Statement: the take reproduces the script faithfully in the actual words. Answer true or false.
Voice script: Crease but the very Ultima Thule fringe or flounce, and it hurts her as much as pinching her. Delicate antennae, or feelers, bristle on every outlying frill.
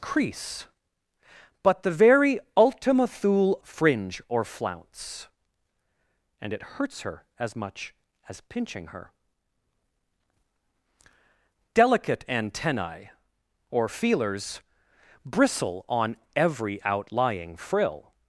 true